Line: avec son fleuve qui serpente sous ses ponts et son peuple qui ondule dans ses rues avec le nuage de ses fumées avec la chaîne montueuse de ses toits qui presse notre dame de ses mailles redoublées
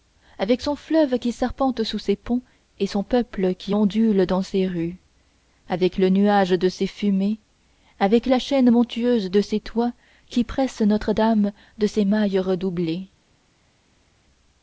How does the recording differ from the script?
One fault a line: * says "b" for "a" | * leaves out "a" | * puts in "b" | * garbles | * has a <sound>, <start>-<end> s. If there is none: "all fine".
all fine